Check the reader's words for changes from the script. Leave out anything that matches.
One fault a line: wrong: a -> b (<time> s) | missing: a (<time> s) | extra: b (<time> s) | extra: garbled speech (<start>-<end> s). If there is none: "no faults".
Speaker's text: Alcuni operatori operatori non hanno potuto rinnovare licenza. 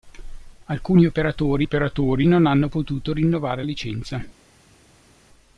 no faults